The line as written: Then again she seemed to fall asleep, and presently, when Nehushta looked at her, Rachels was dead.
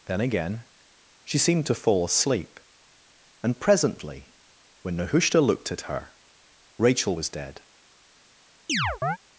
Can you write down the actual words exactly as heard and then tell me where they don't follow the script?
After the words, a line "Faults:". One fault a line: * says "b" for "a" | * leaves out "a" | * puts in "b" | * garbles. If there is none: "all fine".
Then again she seemed to fall asleep, and presently, when Nehushta looked at her, Rachel was dead.
Faults:
* says "Rachel" for "Rachels"